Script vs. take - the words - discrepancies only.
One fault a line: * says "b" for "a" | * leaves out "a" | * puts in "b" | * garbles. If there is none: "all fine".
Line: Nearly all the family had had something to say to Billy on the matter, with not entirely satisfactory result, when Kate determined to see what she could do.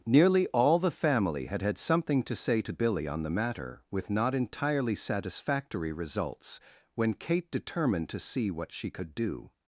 * says "results" for "result"